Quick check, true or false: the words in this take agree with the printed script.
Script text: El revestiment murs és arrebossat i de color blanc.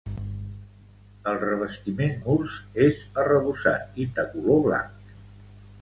true